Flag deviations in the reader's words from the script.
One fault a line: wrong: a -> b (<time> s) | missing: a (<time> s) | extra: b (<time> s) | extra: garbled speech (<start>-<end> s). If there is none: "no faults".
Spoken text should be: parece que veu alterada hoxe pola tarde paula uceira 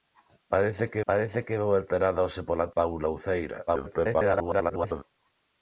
extra: parece que (1.1 s)
missing: tarde (2.7 s)
extra: garbled speech (3.7-5.0 s)